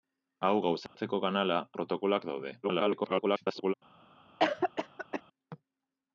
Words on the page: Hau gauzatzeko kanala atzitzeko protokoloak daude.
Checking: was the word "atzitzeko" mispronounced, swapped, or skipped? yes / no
yes